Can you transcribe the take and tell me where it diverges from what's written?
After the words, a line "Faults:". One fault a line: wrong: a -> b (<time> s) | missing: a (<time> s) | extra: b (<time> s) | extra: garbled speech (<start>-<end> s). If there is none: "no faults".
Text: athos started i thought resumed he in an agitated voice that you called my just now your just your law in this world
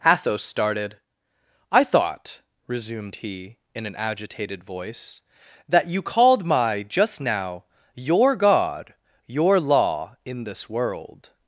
athos started i thought resumed he in an agitated voice that you called my just now your god your law in this world
Faults:
wrong: just -> god (8.3 s)